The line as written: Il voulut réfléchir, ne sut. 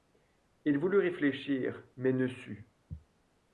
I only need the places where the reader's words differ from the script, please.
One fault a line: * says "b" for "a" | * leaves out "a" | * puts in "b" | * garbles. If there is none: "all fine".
* puts in "mais"